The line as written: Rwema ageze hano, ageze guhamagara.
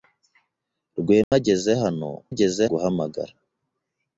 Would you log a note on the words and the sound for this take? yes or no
yes